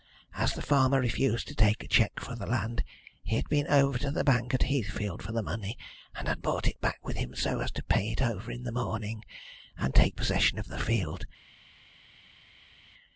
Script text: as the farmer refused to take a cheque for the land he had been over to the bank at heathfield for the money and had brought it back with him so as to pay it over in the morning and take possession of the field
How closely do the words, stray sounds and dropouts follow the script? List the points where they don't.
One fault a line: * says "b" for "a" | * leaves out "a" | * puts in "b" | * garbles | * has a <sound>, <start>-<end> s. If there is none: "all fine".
all fine